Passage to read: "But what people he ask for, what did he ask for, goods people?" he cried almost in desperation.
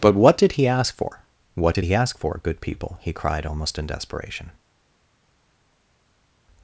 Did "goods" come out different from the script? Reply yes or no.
yes